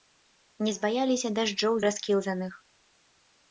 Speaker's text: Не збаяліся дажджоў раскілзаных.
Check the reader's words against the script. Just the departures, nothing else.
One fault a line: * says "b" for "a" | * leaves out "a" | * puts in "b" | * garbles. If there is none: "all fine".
all fine